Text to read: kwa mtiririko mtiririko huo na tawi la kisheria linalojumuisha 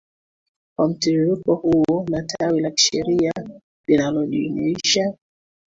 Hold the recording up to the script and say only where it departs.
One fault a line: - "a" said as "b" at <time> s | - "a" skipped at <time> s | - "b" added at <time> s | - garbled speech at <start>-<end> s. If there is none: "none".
- "mtiririko" skipped at 1.6 s